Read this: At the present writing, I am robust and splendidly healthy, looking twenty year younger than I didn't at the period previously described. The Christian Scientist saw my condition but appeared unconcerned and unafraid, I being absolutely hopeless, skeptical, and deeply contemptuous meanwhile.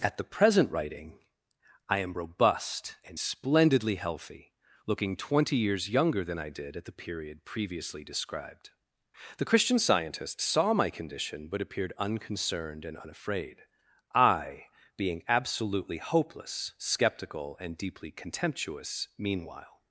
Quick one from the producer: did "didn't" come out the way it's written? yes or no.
no